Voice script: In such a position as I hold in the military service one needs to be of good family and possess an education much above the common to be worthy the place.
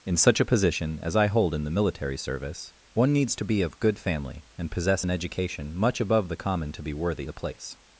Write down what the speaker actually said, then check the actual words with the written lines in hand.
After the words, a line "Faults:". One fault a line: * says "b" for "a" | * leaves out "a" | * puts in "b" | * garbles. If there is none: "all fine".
In such a position as I hold in the military service one needs to be of good family and possess an education much above the common to be worthy the place.
Faults:
all fine